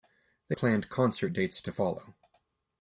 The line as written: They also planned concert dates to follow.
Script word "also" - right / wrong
wrong